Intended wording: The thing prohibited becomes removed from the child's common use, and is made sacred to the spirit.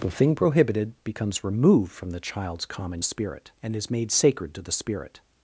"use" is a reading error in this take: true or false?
true